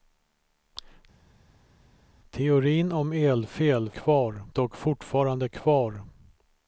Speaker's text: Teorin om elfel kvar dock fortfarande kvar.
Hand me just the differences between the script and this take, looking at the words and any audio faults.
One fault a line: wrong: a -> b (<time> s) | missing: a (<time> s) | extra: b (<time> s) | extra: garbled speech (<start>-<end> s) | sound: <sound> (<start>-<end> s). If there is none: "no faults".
no faults